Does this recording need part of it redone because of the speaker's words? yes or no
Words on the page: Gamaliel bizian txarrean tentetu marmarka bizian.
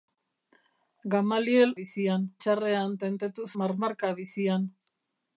no